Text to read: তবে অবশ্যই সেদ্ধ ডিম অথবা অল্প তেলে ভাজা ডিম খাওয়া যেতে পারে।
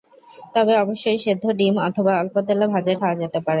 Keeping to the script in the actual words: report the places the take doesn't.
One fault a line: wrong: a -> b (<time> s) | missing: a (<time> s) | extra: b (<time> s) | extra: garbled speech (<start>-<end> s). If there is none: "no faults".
missing: ডিম (2.9 s)